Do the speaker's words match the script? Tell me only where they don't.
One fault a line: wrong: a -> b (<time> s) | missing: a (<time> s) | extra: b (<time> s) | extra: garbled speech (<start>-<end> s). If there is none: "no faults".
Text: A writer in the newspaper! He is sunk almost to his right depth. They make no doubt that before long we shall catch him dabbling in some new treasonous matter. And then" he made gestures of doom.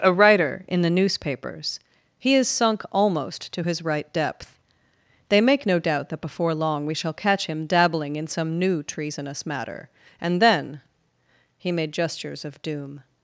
wrong: newspaper -> newspapers (0.9 s)